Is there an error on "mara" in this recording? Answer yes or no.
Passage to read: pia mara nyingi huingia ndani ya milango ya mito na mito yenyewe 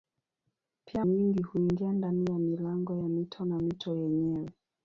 yes